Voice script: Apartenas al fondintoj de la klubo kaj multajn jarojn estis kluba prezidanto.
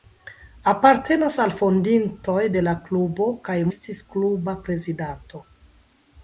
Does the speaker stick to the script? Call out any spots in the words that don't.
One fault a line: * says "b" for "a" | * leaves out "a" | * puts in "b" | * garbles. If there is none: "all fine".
* leaves out "multajn jarojn"